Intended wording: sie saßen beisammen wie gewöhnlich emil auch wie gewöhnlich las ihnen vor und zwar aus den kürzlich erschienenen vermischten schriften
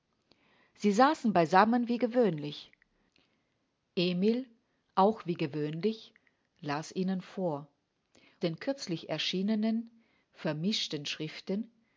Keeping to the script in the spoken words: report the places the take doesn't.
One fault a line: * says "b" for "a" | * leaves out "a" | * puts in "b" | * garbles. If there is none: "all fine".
* leaves out "und zwar aus"